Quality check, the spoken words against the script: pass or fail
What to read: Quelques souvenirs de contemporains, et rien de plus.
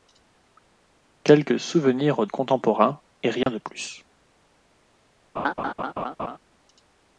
fail